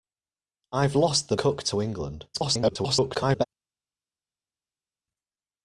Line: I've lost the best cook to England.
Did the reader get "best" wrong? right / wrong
wrong